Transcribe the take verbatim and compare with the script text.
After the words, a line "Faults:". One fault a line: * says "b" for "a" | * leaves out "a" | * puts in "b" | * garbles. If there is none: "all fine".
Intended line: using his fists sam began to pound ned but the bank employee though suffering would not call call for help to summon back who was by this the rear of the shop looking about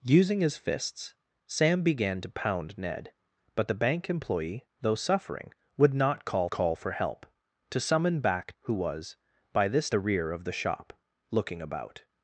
using his fists sam began to pound ned but the bank employee though suffering would not call call for help to summon back who was by this the rear of the shop looking about
Faults:
all fine